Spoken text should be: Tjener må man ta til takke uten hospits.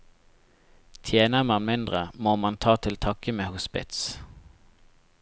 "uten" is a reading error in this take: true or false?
true